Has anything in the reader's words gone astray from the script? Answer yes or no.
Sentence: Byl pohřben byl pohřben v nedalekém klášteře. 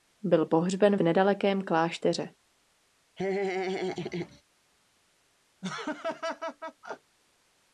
yes